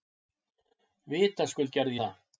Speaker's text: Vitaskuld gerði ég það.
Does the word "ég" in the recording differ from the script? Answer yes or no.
yes